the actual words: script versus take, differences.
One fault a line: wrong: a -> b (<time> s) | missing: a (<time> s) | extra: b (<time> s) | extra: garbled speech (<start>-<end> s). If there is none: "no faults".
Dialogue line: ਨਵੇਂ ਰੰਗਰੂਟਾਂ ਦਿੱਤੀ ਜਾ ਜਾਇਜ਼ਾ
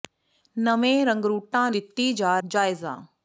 no faults